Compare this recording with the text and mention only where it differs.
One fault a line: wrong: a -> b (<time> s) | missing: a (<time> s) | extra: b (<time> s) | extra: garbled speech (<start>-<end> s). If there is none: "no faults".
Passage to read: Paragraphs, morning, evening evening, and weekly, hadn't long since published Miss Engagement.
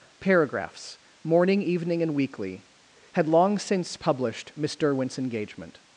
missing: evening (2.0 s)
wrong: hadn't -> had (3.1 s)
extra: Derwent's (4.8 s)